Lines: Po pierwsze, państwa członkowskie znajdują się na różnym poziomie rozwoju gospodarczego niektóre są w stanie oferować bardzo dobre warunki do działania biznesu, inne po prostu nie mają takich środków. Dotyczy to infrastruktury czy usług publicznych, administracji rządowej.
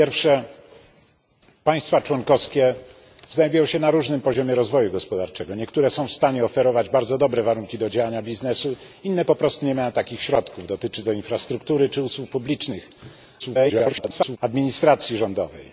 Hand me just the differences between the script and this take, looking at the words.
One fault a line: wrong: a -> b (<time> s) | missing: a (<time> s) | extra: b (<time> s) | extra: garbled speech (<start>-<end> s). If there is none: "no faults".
extra: garbled speech (13.4-14.4 s)